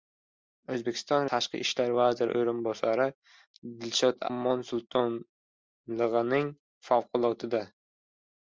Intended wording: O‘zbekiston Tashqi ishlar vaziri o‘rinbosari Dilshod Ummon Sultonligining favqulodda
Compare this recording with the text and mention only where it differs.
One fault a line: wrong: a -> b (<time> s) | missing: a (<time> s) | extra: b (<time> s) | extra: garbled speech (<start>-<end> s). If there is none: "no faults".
no faults